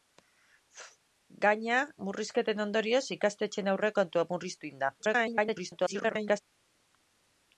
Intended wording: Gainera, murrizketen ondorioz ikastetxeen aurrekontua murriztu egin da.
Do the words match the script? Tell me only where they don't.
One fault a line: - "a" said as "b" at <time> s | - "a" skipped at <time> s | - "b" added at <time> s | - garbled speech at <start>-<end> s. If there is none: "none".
- garbled speech at 5.0-6.4 s